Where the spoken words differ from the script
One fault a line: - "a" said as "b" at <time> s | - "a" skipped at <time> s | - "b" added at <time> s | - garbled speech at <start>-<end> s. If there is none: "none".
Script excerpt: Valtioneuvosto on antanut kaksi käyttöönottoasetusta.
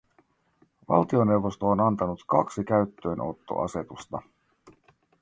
none